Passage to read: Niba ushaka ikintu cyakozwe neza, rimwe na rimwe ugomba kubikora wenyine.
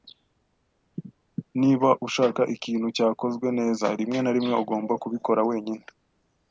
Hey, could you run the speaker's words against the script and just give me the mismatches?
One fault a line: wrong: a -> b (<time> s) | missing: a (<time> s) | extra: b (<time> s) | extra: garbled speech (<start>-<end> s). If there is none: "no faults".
no faults